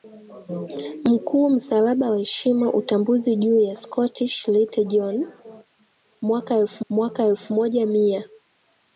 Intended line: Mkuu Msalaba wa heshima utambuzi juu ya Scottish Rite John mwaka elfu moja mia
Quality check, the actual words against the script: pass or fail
fail